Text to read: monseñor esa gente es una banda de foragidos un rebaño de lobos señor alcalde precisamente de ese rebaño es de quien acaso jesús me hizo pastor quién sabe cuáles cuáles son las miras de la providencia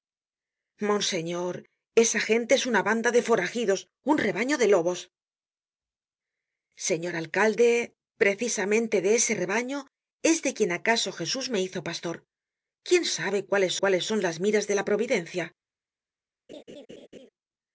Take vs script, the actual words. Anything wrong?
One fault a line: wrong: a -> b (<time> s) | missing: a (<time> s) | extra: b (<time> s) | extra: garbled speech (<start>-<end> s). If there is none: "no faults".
no faults